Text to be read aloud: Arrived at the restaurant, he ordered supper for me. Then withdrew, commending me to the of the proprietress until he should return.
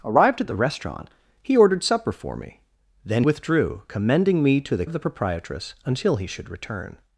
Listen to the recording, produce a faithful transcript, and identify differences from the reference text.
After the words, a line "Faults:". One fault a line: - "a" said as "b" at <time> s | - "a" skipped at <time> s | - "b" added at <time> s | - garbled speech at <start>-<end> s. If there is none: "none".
Arrived at the restaurant, he ordered supper for me. Then withdrew, commending me to the of the proprietress until he should return.
Faults:
none